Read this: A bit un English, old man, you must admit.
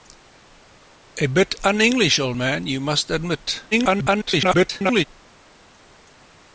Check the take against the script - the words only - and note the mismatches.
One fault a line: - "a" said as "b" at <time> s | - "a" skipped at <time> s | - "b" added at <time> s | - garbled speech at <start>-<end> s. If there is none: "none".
- garbled speech at 3.7-5.0 s